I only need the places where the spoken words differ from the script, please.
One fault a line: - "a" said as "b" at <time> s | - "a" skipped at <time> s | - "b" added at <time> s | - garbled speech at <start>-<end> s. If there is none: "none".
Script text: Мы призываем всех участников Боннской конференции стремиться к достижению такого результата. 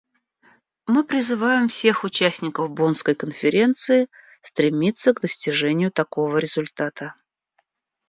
none